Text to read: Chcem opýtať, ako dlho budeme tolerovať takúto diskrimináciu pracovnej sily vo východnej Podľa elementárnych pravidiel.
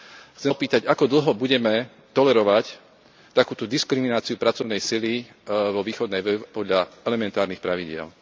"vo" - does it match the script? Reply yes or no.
yes